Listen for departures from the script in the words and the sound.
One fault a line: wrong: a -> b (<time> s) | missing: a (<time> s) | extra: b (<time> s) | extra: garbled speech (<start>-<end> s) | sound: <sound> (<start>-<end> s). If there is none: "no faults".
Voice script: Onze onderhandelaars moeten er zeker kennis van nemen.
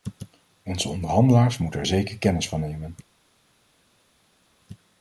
no faults